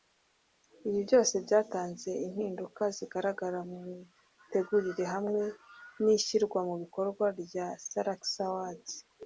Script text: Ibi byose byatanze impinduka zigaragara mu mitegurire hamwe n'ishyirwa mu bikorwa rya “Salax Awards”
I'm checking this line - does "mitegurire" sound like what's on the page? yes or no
yes